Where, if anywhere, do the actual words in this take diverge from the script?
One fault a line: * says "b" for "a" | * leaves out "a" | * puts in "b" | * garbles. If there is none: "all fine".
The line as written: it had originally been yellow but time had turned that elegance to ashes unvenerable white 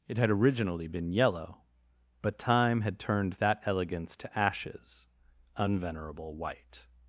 all fine